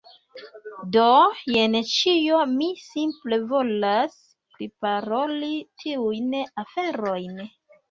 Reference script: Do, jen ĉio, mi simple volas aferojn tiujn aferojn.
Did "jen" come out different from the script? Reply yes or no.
no